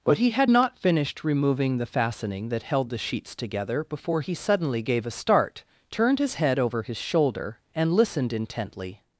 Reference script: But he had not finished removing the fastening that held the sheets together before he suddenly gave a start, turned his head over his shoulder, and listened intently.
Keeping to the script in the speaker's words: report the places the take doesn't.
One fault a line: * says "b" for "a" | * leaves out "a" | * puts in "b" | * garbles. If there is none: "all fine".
all fine